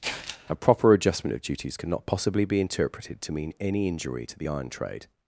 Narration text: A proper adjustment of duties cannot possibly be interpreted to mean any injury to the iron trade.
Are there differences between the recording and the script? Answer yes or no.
no